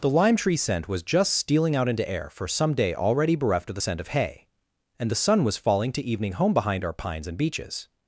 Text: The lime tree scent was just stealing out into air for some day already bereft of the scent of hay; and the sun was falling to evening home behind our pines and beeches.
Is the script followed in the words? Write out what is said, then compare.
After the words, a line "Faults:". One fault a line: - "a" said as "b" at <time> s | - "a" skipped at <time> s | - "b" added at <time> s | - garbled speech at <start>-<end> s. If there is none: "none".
The lime tree scent was just stealing out into air for some day already bereft of the scent of hay; and the sun was falling to evening home behind our pines and beeches.
Faults:
none